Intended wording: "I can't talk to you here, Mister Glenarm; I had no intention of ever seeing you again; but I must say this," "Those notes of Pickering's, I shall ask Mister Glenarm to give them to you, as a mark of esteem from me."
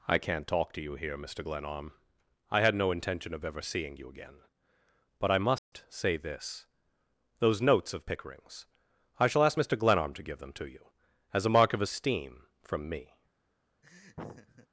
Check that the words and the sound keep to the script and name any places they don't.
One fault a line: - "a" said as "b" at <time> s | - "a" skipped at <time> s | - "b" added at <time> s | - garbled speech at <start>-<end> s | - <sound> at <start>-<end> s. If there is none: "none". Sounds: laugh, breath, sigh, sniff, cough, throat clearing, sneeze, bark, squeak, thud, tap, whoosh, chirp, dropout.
- dropout at 5.6-5.7 s
- laugh at 13.8-14.7 s